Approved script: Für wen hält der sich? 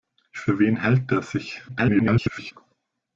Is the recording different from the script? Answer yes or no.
yes